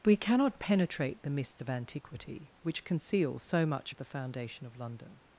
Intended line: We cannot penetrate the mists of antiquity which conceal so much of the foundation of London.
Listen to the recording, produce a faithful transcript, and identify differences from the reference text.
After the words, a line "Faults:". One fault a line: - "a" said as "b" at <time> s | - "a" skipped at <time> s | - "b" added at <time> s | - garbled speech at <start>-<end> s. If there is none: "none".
We cannot penetrate the mists of antiquity which conceal so much of the foundation of London.
Faults:
none